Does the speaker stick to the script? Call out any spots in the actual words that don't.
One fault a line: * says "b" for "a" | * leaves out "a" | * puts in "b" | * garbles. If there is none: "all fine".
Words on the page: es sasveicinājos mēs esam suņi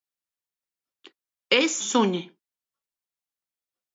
* leaves out "sasveicinājos mēs esam"